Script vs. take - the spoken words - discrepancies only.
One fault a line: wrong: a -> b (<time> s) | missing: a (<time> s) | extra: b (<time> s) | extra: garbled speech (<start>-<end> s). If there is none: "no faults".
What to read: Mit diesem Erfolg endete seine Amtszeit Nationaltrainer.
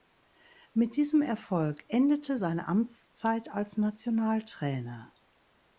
extra: als (3.5 s)